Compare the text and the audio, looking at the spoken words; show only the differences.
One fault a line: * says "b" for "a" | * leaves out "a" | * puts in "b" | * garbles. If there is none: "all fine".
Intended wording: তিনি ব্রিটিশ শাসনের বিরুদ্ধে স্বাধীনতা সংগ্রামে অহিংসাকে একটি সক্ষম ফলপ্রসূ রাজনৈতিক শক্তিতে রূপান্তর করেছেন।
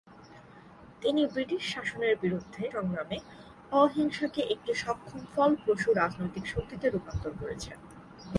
* leaves out "স্বাধীনতা"